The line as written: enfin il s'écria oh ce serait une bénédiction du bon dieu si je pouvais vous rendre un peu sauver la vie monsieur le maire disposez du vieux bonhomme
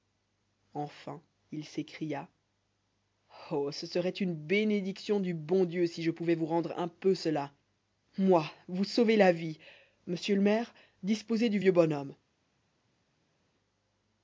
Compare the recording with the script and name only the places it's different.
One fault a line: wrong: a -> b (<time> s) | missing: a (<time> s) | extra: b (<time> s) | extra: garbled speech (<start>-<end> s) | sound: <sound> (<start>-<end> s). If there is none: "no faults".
extra: cela moi vous (7.1 s)